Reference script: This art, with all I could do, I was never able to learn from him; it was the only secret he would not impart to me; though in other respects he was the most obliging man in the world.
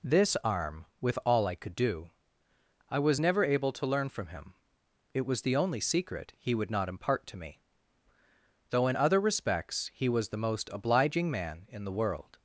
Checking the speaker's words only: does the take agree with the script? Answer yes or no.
no